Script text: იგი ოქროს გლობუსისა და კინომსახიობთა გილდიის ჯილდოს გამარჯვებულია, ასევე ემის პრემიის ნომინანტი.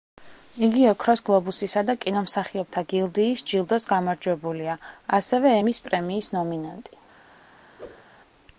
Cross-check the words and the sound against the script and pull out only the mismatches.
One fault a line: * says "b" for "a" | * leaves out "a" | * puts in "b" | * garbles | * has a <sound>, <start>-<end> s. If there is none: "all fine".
* has a whoosh, 7.8-8.0 s